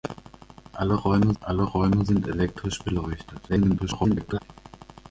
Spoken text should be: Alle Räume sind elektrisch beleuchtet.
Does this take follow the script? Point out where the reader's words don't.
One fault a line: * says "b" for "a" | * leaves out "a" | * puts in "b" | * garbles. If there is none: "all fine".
* puts in "alle Räume"
* garbles